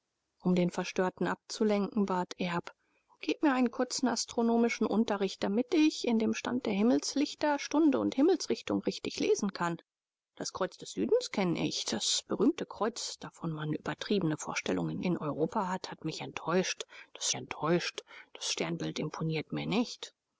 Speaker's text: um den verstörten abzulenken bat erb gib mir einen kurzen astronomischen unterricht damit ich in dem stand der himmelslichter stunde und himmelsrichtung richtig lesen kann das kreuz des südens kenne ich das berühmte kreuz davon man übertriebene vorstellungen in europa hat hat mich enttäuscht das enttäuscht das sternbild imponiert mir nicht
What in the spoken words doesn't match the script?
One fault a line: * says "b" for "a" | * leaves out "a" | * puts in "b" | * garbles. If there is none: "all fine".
all fine